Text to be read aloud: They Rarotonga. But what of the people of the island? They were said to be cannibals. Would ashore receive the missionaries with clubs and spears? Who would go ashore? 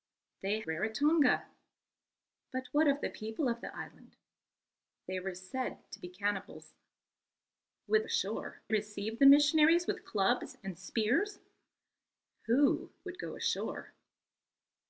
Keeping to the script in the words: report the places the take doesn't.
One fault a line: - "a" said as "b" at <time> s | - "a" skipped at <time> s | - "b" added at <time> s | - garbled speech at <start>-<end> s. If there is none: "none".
none